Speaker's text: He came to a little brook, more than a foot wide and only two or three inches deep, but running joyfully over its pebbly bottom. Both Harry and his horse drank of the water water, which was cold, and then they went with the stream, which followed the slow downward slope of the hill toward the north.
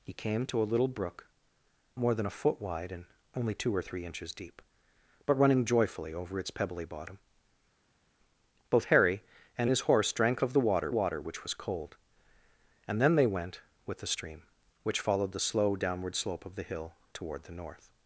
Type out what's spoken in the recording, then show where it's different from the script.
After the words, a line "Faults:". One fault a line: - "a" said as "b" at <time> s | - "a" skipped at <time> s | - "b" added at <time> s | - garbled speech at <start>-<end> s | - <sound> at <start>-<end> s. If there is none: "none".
He came to a little brook, more than a foot wide and only two or three inches deep, but running joyfully over its pebbly bottom. Both Harry and his horse drank of the water water, which was cold, and then they went with the stream, which followed the slow downward slope of the hill toward the north.
Faults:
none